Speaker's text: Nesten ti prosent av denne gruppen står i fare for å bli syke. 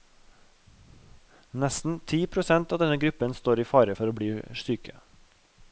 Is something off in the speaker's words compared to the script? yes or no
no